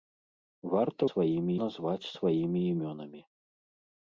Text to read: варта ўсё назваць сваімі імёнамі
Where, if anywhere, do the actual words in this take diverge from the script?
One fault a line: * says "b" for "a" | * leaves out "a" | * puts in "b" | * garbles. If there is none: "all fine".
* says "сваімі" for "ўсё"